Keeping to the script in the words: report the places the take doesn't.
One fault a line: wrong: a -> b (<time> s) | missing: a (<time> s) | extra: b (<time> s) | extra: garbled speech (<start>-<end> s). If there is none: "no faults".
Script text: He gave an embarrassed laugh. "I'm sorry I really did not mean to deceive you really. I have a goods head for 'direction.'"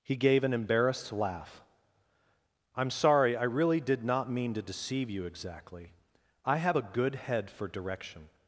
wrong: really -> exactly (5.2 s)
wrong: goods -> good (6.8 s)